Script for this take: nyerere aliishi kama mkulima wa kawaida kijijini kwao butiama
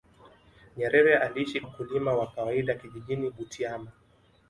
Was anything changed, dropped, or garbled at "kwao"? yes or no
yes